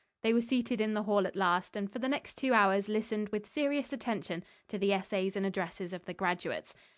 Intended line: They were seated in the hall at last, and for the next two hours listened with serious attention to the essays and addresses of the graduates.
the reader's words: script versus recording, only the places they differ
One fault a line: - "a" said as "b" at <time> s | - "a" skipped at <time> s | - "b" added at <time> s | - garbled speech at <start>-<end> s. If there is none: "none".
none